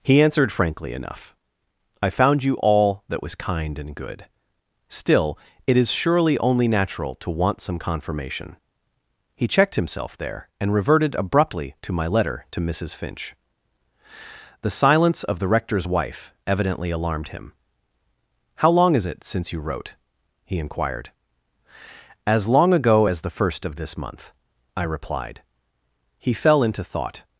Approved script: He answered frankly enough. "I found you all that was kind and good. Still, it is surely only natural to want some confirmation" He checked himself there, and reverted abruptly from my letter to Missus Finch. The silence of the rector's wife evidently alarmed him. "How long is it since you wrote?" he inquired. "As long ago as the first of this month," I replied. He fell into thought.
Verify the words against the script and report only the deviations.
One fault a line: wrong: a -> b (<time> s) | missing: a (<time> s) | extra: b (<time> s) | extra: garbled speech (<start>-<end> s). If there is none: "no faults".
wrong: from -> to (11.8 s)